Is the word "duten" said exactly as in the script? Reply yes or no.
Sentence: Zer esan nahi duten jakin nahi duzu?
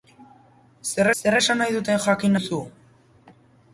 yes